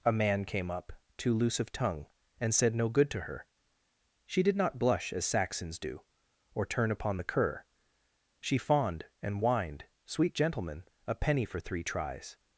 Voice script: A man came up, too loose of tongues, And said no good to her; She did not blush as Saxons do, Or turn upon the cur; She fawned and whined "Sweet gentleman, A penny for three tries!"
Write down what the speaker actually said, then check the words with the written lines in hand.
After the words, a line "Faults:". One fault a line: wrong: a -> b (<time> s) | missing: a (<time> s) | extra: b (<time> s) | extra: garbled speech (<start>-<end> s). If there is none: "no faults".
A man came up, too loose of tongue, And said no good to her; She did not blush as Saxons do, Or turn upon the cur; She fawned and whined "Sweet gentleman, A penny for three tries!"
Faults:
wrong: tongues -> tongue (1.7 s)